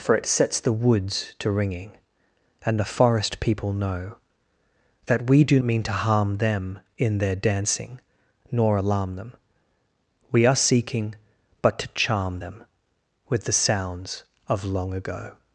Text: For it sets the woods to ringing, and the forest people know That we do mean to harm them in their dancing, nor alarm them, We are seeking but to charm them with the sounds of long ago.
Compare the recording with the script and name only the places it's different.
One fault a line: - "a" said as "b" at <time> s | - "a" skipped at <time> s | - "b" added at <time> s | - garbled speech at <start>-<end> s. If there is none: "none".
none